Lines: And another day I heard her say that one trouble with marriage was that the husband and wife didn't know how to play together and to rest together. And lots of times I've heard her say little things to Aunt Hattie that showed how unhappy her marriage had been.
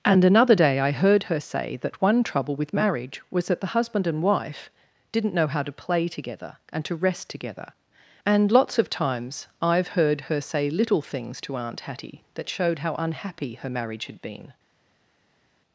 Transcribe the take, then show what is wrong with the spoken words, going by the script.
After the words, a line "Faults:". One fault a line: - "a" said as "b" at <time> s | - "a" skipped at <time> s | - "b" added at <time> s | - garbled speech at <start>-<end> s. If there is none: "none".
And another day I heard her say that one trouble with marriage was that the husband and wife didn't know how to play together and to rest together. And lots of times I've heard her say little things to Aunt Hattie that showed how unhappy her marriage had been.
Faults:
none